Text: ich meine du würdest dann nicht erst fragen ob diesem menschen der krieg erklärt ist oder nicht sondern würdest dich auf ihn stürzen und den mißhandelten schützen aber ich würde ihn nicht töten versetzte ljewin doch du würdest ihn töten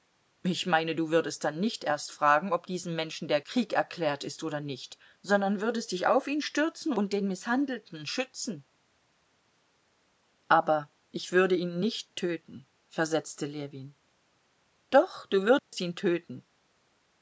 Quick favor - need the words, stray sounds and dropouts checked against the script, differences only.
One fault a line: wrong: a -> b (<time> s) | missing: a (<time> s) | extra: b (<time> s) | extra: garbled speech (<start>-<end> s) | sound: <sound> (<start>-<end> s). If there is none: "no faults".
sound: dropout (15.6-15.7 s)